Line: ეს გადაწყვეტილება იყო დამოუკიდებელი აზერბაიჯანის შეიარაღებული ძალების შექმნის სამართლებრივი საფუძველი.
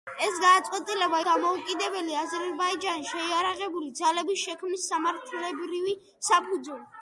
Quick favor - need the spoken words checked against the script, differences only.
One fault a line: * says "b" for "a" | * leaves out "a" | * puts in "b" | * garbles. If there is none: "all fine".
* leaves out "იყო"